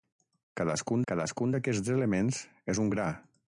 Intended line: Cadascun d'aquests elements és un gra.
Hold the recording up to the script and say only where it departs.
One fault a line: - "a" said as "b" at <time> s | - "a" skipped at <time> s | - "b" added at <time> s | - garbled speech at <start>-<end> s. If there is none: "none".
- "cadascun" added at 1.1 s